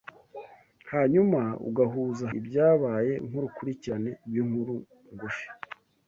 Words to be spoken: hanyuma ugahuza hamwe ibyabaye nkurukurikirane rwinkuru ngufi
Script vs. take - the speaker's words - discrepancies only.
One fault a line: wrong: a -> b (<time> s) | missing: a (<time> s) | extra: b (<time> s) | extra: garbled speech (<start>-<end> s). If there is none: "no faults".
missing: hamwe (2.2 s)